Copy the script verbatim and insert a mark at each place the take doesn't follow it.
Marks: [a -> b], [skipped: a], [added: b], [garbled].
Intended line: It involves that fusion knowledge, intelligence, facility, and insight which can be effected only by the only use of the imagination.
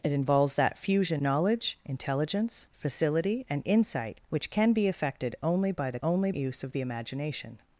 It involves that fusion knowledge, intelligence, facility, and insight which can be effected only by the only use of the imagination.